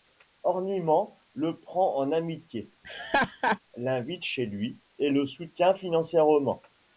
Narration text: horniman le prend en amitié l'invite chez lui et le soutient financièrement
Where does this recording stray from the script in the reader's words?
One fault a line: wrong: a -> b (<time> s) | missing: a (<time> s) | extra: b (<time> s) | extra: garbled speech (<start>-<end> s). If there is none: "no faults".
no faults